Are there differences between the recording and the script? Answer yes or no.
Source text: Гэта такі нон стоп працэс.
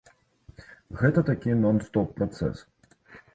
no